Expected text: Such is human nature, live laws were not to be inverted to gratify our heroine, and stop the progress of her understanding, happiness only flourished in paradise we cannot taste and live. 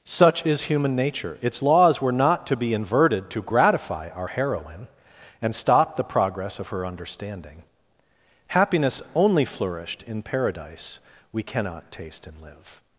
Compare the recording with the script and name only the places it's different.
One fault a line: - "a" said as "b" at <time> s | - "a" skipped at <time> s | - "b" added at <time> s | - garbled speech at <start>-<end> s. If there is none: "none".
- "live" said as "its" at 1.4 s